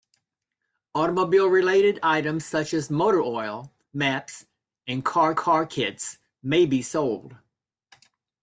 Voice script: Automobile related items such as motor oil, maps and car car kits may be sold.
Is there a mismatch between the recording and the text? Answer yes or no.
no